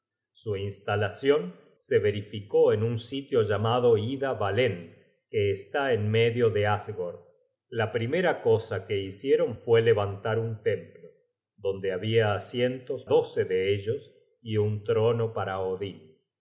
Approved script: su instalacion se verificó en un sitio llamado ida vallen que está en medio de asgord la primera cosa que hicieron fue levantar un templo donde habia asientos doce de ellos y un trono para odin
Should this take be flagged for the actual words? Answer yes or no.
no